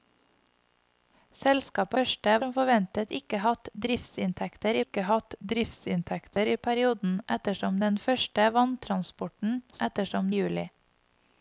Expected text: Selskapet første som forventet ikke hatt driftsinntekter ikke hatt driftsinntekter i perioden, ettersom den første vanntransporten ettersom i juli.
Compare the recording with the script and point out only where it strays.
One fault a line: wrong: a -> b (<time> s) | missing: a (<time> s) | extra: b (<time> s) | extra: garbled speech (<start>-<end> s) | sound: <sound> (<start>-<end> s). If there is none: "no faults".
sound: dropout (6.3-6.4 s)